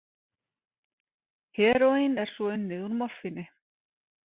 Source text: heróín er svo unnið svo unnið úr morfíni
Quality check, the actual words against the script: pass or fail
fail